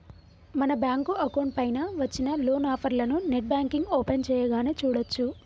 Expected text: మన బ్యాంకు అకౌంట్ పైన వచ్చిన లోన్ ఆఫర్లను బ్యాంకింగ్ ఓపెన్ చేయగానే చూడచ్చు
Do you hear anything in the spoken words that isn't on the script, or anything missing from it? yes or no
yes